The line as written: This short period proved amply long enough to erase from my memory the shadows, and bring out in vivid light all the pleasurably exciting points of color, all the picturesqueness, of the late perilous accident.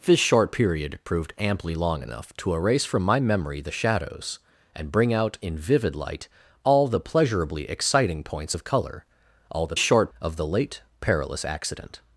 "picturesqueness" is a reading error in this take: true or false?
true